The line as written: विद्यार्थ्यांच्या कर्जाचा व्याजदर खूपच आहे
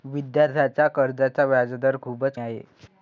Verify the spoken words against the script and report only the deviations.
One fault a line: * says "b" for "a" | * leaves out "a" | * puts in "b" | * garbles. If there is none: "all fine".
all fine